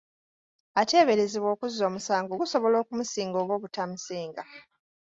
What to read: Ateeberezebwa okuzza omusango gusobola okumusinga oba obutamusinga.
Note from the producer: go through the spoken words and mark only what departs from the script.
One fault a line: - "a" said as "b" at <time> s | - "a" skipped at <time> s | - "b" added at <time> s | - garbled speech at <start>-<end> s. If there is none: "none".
none